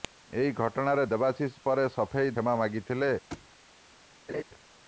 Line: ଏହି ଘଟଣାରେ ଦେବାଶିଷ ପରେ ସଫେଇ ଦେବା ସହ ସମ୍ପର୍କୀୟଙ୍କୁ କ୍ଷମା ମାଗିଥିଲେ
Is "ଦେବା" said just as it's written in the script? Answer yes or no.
no